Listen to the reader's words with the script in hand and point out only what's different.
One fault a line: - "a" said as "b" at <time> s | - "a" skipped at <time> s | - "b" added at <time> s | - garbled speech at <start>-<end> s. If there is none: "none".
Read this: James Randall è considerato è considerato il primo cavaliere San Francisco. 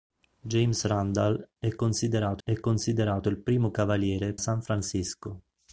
none